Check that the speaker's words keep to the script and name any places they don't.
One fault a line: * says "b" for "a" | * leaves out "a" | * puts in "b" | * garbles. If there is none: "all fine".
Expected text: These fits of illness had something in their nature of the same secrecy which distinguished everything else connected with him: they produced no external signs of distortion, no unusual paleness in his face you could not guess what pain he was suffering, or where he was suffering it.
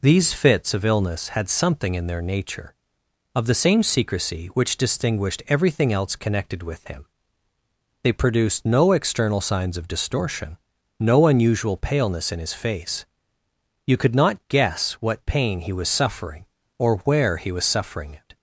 all fine